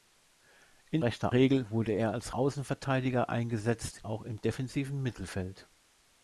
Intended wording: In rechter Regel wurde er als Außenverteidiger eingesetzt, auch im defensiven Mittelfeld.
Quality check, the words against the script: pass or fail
pass